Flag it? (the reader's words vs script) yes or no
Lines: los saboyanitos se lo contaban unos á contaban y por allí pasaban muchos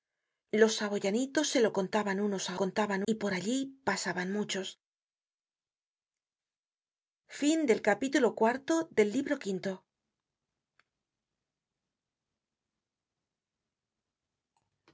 no